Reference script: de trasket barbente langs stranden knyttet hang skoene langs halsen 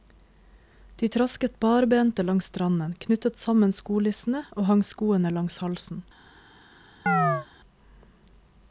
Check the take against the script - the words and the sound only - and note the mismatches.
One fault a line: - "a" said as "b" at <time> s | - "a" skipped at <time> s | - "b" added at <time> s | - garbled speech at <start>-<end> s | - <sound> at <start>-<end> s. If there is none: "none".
- "sammen skolissene og" added at 3.4 s
- chirp at 7.1-7.5 s